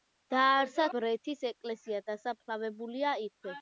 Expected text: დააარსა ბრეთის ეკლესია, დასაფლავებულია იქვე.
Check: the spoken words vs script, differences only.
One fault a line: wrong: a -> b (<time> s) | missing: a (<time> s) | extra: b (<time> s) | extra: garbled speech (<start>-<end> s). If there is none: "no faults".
no faults